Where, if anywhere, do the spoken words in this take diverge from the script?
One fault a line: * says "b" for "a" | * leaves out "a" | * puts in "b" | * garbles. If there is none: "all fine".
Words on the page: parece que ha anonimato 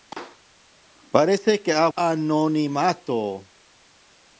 all fine